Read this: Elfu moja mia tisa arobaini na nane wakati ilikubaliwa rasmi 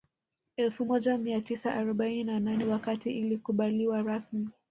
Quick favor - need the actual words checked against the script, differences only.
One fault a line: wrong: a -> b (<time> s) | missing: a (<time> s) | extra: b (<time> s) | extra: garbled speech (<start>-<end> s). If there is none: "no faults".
no faults